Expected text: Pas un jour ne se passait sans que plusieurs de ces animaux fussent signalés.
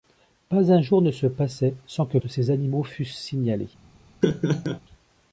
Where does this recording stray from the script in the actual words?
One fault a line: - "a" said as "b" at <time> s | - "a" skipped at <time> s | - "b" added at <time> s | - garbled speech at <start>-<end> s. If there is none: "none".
- "plusieurs" skipped at 2.2 s